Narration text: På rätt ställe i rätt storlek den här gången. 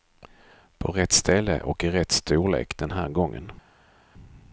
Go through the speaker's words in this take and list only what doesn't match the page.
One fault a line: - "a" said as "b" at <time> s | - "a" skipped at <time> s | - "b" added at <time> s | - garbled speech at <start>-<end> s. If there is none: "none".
- "och" added at 1.6 s